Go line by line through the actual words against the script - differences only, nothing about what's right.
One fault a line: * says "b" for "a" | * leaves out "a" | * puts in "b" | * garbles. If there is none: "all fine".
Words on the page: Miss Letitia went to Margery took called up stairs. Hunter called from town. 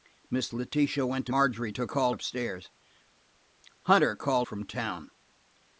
all fine